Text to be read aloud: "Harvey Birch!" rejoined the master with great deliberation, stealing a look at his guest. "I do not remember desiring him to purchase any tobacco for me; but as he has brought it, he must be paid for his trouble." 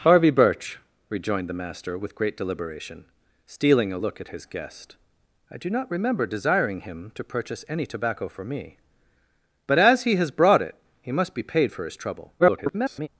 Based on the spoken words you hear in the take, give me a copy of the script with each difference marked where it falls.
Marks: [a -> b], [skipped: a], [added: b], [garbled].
"Harvey Birch!" rejoined the master with great deliberation, stealing a look at his guest. "I do not remember desiring him to purchase any tobacco for me; but as he has brought it, he must be paid for his trouble." [garbled]